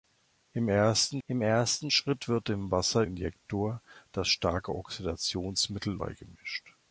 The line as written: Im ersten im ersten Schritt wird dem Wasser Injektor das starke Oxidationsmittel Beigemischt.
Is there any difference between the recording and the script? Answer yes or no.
no